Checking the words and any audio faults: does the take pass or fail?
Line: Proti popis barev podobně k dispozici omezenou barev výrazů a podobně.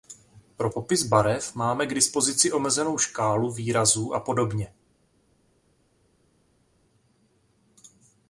fail